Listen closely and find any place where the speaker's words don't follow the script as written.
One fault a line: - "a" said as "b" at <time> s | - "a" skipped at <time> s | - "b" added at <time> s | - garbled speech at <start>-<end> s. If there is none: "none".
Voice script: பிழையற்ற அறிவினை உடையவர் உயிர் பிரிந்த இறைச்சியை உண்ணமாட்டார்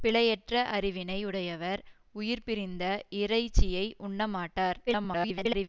- garbled speech at 4.9-5.7 s